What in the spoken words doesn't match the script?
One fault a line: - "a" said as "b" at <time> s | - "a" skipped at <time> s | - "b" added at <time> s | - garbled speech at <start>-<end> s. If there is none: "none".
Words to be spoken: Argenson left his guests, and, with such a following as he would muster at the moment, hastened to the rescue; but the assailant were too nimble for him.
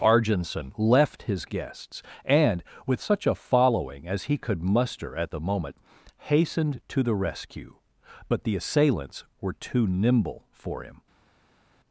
- "would" said as "could" at 4.4 s
- "assailant" said as "assailants" at 8.5 s